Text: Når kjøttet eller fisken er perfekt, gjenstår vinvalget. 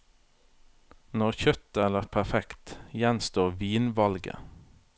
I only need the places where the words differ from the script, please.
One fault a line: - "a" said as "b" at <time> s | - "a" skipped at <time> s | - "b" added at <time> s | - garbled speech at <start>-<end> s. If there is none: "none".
- "fisken" skipped at 2.1 s